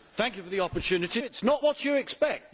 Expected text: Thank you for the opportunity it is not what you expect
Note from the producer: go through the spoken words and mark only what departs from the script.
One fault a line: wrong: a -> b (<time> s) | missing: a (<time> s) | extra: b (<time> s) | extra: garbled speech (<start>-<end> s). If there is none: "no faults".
no faults